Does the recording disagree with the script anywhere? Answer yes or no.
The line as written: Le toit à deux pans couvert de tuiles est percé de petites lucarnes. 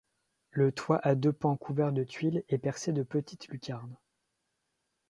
no